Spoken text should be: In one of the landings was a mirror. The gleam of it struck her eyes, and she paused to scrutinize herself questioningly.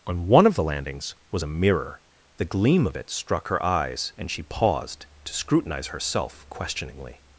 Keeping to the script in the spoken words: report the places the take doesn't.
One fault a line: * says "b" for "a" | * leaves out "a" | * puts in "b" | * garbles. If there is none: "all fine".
* says "On" for "In"